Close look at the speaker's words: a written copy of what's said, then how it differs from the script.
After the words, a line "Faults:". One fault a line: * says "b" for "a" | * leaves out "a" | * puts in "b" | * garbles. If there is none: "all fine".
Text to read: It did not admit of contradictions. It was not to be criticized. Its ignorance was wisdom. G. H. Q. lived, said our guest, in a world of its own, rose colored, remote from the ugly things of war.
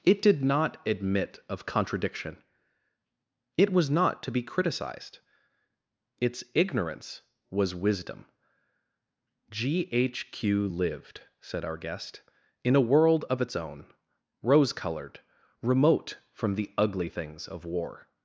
It did not admit of contradiction. It was not to be criticized. Its ignorance was wisdom. G. H. Q. lived, said our guest, in a world of its own, rose colored, remote from the ugly things of war.
Faults:
* says "contradiction" for "contradictions"